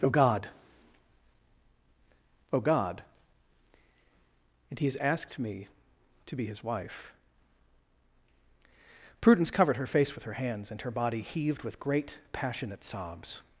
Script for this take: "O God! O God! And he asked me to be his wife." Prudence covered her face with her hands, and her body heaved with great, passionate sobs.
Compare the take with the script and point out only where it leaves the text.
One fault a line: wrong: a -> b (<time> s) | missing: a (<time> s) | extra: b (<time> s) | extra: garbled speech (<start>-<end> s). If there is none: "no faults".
extra: has (4.8 s)